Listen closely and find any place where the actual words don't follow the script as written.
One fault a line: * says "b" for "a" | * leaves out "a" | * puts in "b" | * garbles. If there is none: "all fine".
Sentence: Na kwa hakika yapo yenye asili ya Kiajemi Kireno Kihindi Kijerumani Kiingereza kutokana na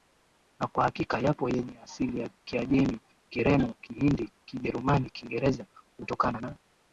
all fine